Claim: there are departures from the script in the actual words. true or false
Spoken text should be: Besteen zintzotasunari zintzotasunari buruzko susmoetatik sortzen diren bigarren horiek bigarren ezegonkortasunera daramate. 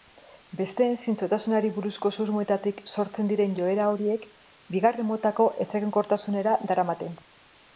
true